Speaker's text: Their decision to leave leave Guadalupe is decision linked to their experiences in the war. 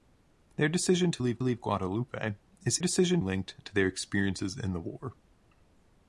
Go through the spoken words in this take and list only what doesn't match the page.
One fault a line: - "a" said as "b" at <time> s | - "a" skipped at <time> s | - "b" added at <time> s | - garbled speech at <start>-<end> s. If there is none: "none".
none